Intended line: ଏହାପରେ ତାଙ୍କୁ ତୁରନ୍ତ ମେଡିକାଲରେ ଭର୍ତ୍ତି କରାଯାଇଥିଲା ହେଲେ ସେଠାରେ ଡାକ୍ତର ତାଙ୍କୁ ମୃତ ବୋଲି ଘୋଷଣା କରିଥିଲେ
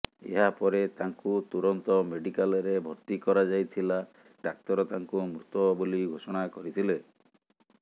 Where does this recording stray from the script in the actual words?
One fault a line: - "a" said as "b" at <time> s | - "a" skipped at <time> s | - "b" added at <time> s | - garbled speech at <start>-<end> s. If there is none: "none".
- "ହେଲେ ସେଠାରେ" skipped at 4.0 s